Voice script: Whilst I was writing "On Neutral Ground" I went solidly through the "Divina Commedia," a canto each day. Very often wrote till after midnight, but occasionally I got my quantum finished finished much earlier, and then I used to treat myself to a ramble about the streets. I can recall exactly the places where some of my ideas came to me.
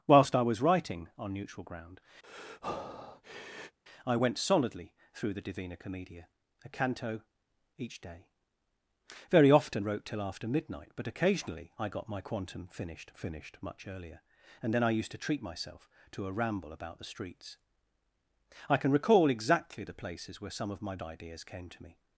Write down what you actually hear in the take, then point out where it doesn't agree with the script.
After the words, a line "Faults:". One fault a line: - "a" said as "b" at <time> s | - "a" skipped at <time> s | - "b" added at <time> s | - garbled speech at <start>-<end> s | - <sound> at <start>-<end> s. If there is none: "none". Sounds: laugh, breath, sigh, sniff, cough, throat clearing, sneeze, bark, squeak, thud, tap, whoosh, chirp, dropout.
Whilst I was writing "On Neutral Ground" I went solidly through the "Divina Commedia," a canto each day. Very often wrote till after midnight, but occasionally I got my quantum finished finished much earlier, and then I used to treat myself to a ramble about the streets. I can recall exactly the places where some of my ideas came to me.
Faults:
- breath at 2.2-3.8 s